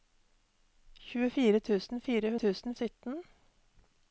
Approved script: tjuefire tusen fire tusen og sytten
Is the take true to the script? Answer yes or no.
yes